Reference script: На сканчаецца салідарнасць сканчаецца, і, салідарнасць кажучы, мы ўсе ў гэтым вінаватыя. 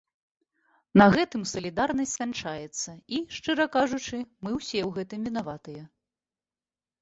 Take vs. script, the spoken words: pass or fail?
fail